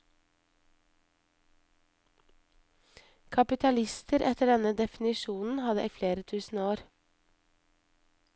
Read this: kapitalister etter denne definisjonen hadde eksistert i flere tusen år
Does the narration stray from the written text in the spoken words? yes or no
yes